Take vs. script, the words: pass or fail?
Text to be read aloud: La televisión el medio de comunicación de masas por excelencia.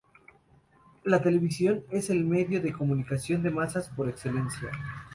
fail